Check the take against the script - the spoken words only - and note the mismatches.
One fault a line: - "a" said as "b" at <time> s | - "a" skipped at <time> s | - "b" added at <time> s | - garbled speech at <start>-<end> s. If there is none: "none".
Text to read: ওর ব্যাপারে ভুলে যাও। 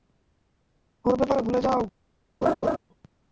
none